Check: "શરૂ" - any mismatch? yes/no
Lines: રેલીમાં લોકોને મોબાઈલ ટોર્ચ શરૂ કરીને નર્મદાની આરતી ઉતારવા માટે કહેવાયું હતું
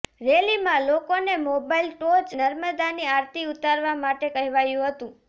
yes